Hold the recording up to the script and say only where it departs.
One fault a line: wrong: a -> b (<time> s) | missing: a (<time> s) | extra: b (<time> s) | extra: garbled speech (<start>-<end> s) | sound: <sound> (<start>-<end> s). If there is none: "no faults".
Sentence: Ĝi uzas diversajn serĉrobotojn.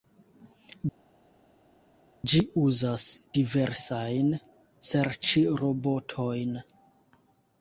no faults